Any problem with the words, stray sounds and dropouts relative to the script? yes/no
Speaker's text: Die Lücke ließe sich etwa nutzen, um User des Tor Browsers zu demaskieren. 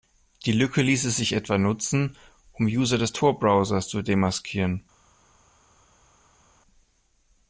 no